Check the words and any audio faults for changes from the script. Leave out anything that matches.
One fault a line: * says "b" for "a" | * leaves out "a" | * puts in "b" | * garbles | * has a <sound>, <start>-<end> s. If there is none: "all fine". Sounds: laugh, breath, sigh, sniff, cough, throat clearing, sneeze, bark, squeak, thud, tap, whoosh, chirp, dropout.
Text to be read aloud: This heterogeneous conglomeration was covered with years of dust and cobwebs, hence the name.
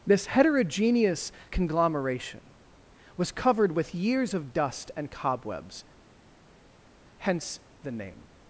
all fine